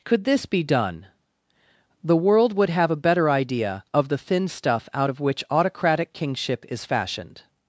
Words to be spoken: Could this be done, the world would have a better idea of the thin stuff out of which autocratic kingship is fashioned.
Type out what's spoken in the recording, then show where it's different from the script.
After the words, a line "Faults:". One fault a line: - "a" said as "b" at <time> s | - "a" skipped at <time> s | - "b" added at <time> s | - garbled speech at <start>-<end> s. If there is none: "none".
Could this be done, the world would have a better idea of the thin stuff out of which autocratic kingship is fashioned.
Faults:
none